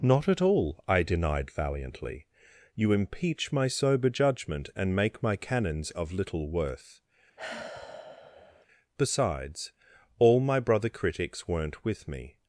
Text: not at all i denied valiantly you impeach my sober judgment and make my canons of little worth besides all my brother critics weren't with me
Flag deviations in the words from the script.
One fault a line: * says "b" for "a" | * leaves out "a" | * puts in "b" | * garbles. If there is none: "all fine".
all fine